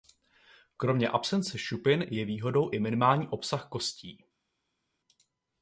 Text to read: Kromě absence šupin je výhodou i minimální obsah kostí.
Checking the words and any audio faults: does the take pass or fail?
pass